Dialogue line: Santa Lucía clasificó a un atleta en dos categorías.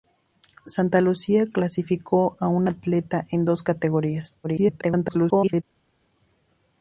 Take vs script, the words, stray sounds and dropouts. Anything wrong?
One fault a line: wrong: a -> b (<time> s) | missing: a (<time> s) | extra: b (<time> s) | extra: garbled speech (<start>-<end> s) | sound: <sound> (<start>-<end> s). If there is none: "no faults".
extra: garbled speech (4.4-5.6 s)